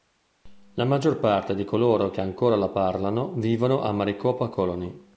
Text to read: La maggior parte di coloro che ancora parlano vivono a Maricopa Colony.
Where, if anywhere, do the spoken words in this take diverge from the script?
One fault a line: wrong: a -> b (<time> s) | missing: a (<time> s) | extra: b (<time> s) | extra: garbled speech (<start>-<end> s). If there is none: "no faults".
extra: la (2.5 s)